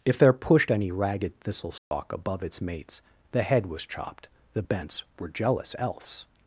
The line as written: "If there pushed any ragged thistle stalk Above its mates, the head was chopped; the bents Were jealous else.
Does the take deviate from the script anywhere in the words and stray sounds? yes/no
yes